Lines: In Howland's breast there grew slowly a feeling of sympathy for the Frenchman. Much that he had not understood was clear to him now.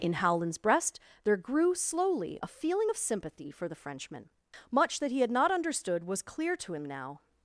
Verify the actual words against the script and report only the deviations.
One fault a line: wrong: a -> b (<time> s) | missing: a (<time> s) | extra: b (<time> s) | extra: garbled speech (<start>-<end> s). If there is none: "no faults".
no faults